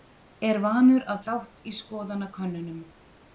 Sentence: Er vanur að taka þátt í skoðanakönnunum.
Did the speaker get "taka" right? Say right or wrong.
wrong